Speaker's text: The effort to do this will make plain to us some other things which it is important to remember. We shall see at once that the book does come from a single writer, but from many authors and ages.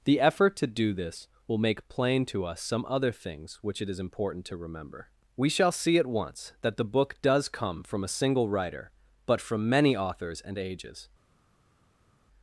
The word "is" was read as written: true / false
true